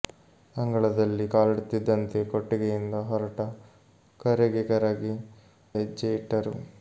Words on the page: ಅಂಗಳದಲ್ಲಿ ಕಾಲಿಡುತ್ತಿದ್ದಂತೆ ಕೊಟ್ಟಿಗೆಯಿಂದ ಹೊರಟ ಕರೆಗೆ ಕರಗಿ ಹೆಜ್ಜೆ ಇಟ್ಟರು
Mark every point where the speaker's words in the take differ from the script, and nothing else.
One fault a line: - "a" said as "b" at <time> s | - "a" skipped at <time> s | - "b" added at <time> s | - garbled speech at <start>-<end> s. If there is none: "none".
none